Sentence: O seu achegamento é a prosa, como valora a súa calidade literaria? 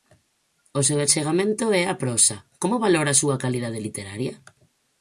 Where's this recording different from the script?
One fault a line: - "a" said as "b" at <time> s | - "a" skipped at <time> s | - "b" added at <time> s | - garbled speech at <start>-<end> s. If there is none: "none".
none